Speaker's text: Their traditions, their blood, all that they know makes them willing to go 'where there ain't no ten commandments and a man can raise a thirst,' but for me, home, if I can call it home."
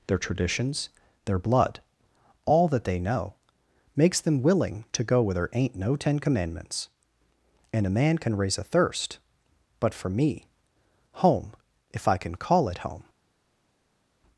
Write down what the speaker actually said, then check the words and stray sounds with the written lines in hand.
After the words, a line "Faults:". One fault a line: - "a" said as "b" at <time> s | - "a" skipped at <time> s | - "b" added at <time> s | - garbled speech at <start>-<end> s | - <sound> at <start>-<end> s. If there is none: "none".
Their traditions, their blood, all that they know makes them willing to go 'where there ain't no ten commandments and a man can raise a thirst,' but for me, home, if I can call it home."
Faults:
none